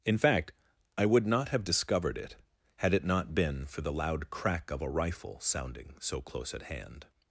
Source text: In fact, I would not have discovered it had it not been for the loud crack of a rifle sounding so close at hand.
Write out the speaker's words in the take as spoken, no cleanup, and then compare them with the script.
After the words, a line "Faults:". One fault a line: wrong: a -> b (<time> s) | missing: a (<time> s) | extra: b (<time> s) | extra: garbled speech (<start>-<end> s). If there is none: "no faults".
In fact, I would not have discovered it had it not been for the loud crack of a rifle sounding so close at hand.
Faults:
no faults